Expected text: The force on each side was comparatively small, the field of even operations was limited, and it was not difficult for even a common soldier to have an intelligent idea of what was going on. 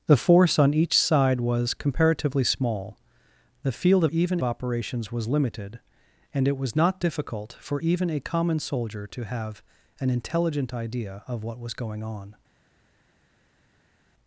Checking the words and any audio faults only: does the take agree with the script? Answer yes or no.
yes